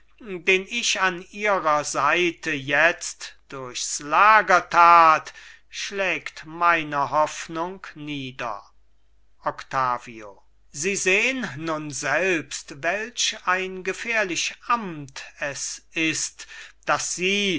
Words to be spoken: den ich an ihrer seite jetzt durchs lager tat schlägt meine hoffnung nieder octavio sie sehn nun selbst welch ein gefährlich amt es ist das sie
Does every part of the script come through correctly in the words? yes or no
yes